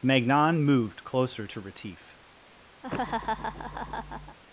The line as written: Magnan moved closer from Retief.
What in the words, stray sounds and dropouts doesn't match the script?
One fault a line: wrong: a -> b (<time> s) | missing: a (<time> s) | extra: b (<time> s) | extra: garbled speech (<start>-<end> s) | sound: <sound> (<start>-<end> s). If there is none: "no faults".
wrong: from -> to (1.4 s)
sound: laugh (2.8-4.4 s)